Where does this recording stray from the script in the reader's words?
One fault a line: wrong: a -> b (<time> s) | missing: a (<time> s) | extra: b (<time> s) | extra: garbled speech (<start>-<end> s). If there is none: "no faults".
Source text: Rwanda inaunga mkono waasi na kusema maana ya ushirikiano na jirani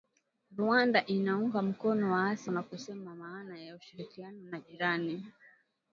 no faults